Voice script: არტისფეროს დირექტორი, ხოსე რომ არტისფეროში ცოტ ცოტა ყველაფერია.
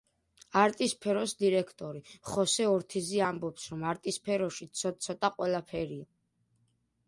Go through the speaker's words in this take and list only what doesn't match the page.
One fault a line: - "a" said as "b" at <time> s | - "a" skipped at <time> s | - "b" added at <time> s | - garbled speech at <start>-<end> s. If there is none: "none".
- "ორთიზი ამბობს" added at 2.7 s